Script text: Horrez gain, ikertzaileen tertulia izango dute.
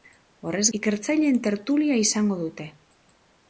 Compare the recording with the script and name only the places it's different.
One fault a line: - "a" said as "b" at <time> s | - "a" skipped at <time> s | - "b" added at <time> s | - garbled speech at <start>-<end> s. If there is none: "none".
- "gain" skipped at 0.6 s